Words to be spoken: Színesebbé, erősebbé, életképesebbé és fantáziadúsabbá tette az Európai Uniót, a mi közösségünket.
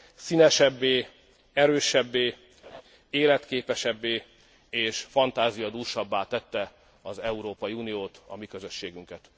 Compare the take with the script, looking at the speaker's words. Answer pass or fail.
pass